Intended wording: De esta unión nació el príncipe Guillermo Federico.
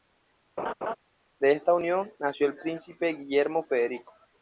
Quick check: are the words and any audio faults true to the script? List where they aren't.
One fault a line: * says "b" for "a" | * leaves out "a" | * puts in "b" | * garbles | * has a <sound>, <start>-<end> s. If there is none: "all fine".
* has a laugh, 0.6-1.0 s